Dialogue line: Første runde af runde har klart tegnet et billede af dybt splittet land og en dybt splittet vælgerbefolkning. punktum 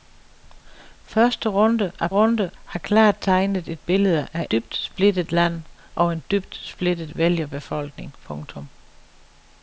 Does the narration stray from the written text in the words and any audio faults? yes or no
no